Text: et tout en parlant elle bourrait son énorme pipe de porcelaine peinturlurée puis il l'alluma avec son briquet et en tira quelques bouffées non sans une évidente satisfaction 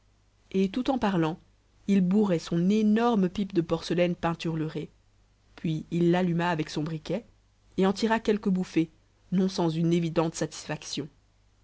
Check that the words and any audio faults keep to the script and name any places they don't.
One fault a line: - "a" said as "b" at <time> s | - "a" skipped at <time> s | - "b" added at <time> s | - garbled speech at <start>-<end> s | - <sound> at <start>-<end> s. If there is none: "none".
- "elle" said as "il" at 1.9 s